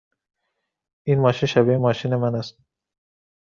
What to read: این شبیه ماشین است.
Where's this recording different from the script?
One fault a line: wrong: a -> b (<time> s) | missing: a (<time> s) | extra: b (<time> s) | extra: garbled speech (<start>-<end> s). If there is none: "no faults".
extra: ماشین (1.2 s)
extra: من (2.1 s)